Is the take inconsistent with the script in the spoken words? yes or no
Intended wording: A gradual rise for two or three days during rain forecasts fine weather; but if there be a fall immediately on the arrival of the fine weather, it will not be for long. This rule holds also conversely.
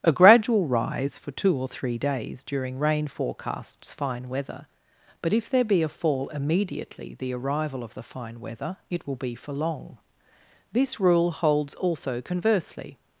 yes